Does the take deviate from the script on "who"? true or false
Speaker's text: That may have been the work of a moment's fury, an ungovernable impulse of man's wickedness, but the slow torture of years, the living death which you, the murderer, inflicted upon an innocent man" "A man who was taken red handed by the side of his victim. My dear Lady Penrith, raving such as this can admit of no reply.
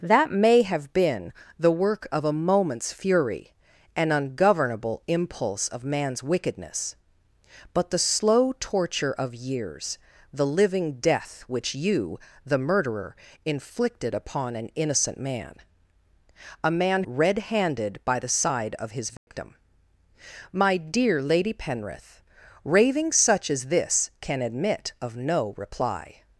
true